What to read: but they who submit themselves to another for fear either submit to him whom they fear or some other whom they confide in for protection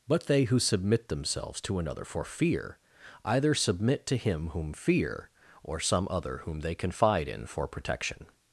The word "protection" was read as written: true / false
true